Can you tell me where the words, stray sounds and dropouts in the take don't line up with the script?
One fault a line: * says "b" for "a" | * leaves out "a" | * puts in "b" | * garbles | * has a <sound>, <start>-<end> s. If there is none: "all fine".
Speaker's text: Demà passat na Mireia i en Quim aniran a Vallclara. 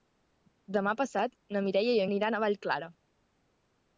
* leaves out "en Quim"